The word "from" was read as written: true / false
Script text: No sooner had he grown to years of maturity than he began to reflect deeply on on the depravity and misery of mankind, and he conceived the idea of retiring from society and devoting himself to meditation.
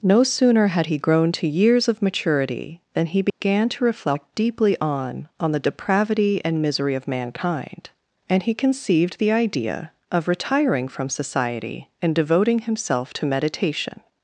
true